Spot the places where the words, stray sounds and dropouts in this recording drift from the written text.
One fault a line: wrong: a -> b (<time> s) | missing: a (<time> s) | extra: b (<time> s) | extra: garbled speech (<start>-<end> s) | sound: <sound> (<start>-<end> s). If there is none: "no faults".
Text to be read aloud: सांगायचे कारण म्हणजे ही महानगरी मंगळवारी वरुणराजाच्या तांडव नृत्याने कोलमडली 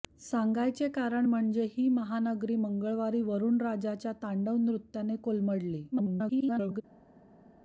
extra: garbled speech (5.9-6.8 s)